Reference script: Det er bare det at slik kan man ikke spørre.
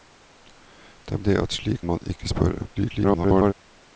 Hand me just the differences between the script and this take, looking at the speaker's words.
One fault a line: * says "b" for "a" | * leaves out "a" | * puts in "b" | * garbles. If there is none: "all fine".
* leaves out "bare"
* leaves out "kan"
* garbles